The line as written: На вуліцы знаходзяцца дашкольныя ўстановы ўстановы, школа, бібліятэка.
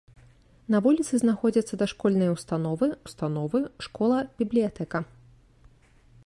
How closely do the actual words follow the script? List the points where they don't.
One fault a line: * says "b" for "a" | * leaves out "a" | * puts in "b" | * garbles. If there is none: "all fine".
all fine